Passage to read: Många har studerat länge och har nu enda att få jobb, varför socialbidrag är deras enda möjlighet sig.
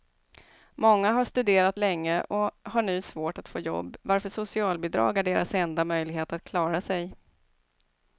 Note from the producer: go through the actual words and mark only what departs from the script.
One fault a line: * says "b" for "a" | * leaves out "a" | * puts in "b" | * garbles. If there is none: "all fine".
* says "svårt" for "enda"
* puts in "att klara"